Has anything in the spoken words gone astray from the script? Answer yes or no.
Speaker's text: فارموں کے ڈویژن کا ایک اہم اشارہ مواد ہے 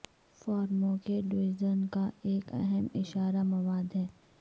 no